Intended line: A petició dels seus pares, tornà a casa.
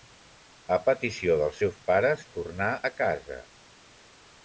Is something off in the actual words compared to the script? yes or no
no